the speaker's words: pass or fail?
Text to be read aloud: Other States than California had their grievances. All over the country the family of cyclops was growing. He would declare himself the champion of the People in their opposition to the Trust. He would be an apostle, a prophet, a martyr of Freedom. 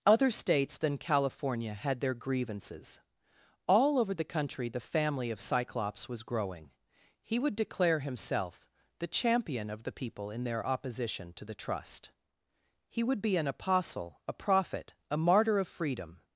pass